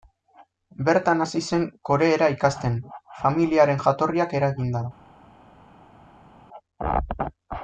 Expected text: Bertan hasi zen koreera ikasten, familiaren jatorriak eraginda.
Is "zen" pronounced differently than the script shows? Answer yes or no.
no